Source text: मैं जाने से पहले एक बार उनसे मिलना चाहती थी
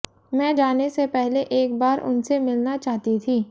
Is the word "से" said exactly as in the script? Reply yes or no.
yes